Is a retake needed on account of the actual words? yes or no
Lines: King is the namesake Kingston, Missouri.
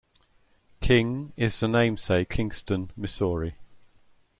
no